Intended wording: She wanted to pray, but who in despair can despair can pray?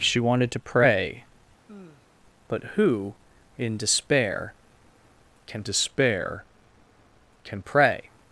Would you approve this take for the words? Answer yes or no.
yes